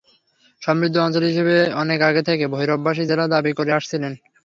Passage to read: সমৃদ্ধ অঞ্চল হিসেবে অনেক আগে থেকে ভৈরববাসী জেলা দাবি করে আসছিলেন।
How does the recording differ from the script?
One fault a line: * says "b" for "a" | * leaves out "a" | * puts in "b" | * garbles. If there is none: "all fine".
all fine